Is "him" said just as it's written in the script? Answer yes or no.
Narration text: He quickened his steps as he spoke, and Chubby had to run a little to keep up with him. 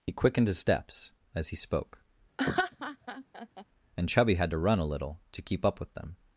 no